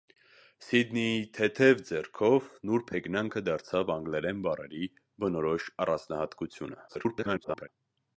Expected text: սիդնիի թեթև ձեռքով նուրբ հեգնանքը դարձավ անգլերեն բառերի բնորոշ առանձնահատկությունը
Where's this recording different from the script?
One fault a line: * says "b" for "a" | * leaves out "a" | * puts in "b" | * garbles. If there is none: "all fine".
* garbles